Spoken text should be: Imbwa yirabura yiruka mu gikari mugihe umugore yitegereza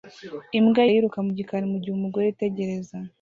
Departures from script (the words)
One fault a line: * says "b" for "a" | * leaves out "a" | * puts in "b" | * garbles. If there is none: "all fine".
* leaves out "yirabura"